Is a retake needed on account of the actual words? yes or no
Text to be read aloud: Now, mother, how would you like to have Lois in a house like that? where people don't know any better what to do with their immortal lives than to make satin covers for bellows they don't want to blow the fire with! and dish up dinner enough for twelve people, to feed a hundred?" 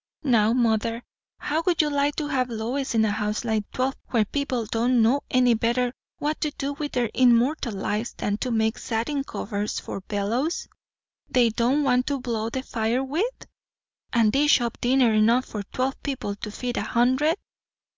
yes